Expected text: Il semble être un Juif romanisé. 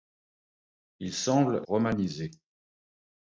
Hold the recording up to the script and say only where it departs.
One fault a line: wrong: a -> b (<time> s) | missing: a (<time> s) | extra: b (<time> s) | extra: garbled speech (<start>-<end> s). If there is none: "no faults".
missing: être un Juif (1.6 s)